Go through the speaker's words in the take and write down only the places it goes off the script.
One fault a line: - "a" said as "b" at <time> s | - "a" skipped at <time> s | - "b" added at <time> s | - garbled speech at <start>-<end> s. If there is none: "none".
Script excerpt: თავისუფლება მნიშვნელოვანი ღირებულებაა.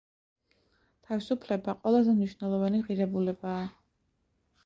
- "ყველაზე" added at 1.8 s